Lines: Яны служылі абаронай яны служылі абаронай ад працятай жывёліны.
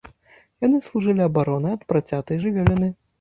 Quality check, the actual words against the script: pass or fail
fail